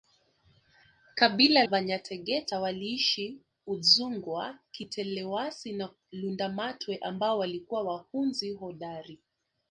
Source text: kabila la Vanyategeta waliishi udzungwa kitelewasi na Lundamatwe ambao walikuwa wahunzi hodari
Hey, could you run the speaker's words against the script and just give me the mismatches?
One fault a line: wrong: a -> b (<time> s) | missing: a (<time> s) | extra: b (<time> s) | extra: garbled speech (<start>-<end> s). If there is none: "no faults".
missing: la (1.6 s)